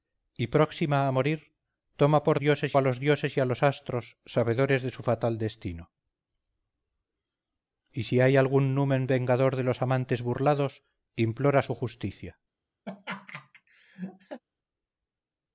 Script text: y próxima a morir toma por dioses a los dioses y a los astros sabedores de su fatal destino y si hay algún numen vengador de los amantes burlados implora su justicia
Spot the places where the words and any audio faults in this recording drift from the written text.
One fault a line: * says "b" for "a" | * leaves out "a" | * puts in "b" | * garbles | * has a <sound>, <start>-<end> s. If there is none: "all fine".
* has a laugh, 12.9-14.4 s